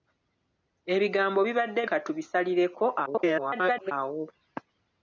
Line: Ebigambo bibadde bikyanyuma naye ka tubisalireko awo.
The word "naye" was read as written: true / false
false